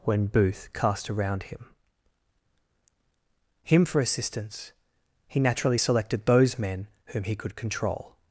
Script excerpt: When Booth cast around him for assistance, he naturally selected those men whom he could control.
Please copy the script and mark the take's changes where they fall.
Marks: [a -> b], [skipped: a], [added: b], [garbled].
When Booth cast around him [added: him] for assistance, he naturally selected those men whom he could control.